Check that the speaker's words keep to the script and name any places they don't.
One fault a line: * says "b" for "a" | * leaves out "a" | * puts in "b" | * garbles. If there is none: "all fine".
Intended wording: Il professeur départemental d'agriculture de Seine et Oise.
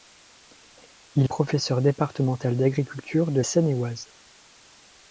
all fine